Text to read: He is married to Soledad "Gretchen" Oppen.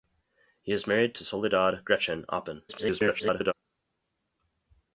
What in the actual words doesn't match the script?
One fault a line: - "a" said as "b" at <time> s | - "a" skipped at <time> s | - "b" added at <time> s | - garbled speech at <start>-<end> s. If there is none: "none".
- garbled speech at 2.7-3.5 s